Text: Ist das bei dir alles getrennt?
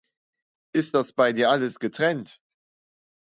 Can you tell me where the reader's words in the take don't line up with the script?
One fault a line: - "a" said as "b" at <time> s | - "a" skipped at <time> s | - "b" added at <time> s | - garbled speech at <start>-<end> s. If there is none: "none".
none